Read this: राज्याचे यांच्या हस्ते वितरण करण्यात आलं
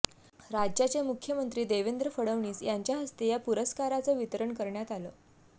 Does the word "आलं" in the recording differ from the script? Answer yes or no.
no